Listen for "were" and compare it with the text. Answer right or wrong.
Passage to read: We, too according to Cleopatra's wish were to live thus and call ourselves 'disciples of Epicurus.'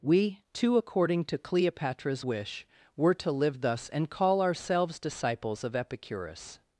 right